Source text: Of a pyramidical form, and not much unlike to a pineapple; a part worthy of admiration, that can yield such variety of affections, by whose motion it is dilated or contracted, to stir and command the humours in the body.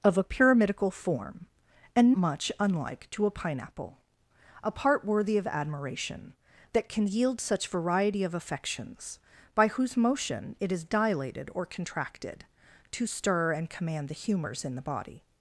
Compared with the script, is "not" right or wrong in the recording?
wrong